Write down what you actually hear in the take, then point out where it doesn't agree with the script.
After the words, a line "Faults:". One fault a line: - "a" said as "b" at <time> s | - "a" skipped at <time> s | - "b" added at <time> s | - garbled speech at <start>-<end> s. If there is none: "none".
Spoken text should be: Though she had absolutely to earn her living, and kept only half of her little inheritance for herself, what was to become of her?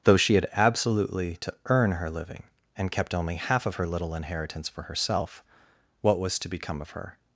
Though she had absolutely to earn her living, and kept only half of her little inheritance for herself, what was to become of her?
Faults:
none